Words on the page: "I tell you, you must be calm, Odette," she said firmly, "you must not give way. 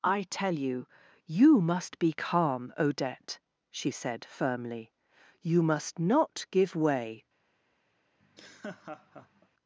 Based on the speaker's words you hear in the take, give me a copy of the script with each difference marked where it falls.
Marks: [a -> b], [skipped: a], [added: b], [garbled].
"I tell you, you must be calm, Odette," she said firmly, "you must not give way.